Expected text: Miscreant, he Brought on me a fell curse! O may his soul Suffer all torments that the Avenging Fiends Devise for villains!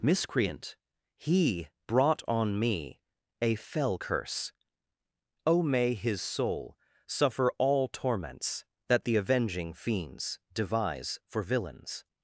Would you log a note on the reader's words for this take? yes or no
no